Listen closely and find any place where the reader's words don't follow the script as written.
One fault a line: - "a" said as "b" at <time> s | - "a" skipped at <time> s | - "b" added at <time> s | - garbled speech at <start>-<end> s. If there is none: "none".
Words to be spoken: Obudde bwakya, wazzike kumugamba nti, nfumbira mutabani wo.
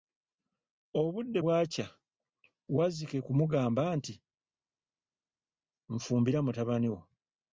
none